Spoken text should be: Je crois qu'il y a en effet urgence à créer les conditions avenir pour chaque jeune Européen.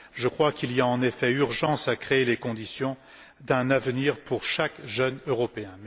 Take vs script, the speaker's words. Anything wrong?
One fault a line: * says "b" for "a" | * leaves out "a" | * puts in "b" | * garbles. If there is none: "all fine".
* puts in "d'un"